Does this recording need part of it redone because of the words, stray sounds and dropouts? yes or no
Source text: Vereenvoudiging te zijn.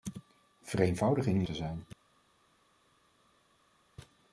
no